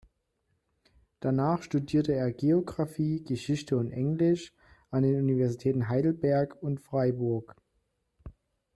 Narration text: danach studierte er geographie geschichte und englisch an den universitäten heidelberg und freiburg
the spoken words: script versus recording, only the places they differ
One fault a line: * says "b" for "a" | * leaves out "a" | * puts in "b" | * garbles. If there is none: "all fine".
all fine